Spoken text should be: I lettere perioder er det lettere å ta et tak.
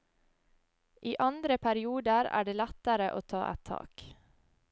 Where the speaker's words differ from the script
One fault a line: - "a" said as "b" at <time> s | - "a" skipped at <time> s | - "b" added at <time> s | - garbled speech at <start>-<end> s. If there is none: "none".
- "lettere" said as "andre" at 1.2 s